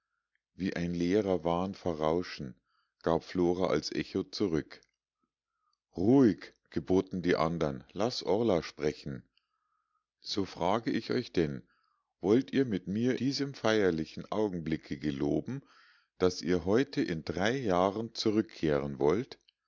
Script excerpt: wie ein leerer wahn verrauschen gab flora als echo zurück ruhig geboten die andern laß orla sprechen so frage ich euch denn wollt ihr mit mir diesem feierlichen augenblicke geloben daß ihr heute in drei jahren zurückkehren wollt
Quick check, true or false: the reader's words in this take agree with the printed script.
true